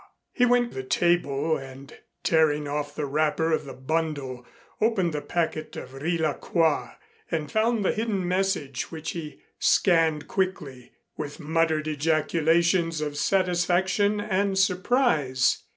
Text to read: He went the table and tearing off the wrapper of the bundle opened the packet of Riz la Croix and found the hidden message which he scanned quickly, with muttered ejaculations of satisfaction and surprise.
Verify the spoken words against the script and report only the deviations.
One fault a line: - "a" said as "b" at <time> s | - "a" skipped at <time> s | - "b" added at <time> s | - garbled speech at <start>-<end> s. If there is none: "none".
none